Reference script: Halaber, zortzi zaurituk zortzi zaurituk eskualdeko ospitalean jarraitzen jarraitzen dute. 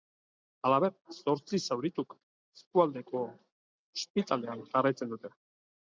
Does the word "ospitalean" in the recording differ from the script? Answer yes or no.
no